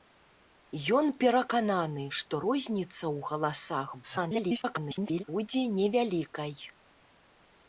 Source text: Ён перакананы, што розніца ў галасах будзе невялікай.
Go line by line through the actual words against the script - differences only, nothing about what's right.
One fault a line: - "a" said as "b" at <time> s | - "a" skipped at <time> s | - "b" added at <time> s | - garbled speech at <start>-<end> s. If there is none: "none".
- garbled speech at 4.0-5.2 s